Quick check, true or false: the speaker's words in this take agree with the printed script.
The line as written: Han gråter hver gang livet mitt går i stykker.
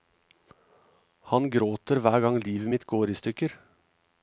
true